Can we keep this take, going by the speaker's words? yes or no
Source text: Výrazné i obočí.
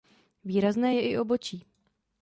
no